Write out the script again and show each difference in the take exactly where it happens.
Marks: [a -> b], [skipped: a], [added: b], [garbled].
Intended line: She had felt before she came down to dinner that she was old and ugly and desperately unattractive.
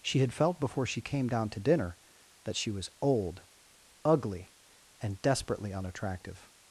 She had felt before she came down to dinner that she was old [skipped: and] ugly and desperately unattractive.